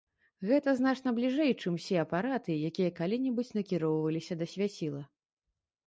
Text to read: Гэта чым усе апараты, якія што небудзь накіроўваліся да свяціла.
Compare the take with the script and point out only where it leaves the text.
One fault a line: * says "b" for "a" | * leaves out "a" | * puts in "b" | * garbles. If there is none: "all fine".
* puts in "значна бліжэй"
* says "калі" for "што"